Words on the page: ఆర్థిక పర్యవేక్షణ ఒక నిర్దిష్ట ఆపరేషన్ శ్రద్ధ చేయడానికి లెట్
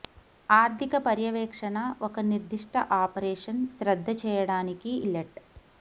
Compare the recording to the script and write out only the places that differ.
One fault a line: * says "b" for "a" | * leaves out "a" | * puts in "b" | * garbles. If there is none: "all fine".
all fine